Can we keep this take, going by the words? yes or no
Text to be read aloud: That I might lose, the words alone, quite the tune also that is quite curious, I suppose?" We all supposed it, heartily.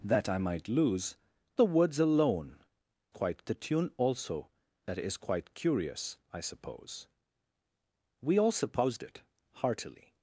yes